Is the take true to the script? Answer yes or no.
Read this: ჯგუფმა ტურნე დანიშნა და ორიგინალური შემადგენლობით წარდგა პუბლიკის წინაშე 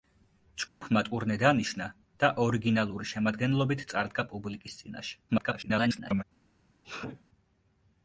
no